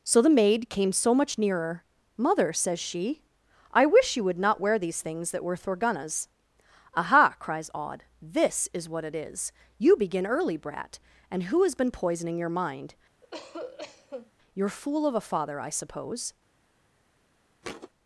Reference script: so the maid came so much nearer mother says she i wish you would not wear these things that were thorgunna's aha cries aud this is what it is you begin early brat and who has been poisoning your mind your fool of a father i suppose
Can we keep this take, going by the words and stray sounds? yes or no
no